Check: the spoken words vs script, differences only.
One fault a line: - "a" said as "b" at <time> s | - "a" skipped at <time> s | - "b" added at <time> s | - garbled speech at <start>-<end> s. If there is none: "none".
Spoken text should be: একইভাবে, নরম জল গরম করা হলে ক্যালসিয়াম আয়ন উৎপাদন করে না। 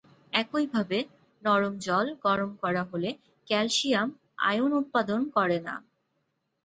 none